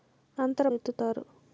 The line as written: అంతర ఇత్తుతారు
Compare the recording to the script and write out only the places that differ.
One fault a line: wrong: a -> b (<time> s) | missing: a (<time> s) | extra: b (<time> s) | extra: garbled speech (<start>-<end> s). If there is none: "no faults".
no faults